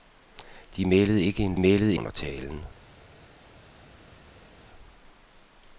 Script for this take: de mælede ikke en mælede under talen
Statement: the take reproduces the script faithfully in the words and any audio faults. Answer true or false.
true